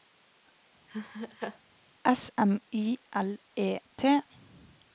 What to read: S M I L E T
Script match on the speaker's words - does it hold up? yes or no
yes